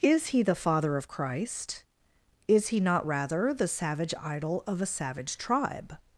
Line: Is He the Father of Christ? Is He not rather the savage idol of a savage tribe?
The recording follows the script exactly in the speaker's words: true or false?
true